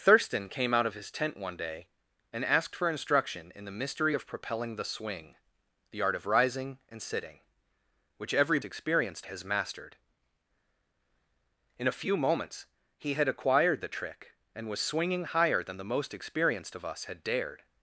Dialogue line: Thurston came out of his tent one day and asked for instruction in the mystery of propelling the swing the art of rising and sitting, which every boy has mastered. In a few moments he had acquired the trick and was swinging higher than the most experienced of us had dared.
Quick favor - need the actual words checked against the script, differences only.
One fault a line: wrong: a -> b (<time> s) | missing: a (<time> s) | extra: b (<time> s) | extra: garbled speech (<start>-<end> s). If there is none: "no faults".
wrong: boy -> experienced (8.6 s)